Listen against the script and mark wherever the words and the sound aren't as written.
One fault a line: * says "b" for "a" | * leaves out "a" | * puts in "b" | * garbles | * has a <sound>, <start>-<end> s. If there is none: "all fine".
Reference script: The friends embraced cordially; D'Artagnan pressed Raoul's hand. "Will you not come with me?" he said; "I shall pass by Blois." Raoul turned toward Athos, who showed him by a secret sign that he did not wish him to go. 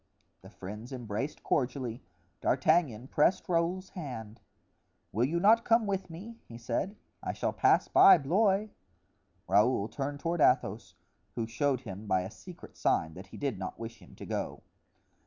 all fine